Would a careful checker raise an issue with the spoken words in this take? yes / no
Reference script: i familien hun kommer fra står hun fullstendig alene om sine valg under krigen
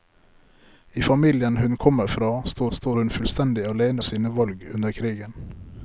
yes